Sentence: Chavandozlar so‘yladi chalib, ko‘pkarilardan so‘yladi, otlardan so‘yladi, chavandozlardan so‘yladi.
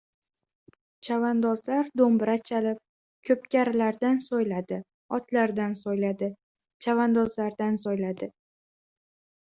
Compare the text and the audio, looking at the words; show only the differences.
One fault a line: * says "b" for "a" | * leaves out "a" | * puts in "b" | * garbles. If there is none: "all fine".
* says "do‘mbira" for "so‘yladi"